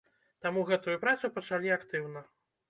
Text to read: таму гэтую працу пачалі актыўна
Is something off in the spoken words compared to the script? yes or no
no